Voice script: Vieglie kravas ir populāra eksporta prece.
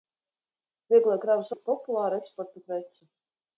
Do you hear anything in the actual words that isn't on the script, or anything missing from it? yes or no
no